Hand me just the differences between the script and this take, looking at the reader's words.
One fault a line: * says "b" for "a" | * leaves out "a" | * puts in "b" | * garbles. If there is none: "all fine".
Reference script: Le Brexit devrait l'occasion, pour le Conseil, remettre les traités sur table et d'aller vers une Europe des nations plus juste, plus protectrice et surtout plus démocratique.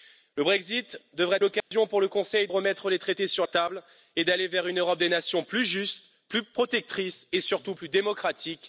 all fine